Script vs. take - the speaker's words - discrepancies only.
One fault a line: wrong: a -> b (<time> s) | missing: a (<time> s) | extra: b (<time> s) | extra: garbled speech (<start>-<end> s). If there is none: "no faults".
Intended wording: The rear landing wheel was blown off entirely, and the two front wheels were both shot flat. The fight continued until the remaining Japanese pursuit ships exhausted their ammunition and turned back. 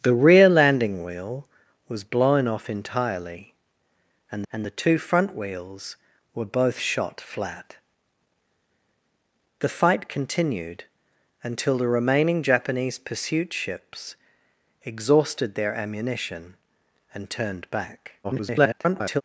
extra: and (4.5 s)
extra: garbled speech (18.2-19.2 s)